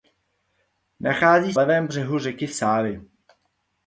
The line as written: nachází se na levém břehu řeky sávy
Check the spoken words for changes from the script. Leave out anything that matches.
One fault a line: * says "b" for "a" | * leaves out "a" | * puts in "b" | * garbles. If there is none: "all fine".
* leaves out "se na"